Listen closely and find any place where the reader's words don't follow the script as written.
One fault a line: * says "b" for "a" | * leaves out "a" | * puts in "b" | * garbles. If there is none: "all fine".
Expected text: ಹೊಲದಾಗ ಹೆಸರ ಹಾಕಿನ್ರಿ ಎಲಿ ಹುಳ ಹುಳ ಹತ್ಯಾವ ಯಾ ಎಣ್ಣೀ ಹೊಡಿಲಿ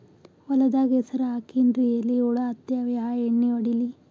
* leaves out "ಹುಳ"